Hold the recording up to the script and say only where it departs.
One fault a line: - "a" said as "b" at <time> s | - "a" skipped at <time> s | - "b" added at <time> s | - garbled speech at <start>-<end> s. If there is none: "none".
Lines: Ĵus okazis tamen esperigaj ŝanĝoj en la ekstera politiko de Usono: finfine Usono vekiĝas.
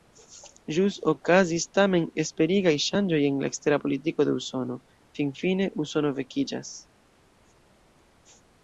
none